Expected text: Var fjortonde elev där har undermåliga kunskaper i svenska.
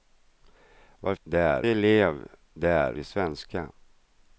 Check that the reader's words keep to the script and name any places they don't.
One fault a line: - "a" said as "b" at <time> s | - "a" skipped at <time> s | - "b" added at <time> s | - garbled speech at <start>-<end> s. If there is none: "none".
- "fjortonde" said as "där" at 1.2 s
- "har undermåliga kunskaper" skipped at 2.9 s